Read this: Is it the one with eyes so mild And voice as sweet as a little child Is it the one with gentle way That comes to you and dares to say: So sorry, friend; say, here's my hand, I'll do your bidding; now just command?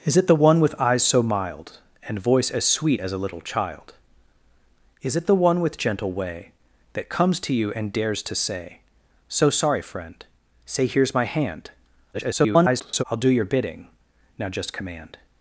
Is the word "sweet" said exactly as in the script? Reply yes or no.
yes